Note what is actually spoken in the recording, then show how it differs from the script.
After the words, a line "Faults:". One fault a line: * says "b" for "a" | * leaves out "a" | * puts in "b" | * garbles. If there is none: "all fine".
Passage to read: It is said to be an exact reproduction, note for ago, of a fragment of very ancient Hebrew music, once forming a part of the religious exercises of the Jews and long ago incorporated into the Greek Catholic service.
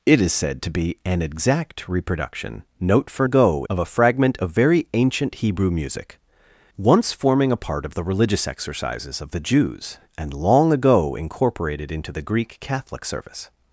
It is said to be an exact reproduction, note for ago, of a fragment of very ancient Hebrew music, once forming a part of the religious exercises of the Jews and long ago incorporated into the Greek Catholic service.
Faults:
all fine